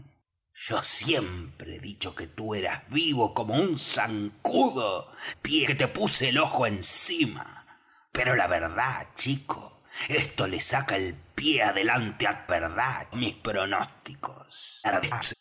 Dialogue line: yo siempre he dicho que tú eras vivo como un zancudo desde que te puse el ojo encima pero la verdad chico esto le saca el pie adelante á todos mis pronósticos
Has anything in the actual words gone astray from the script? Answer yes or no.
yes